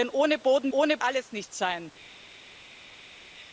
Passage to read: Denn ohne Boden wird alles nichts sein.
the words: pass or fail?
fail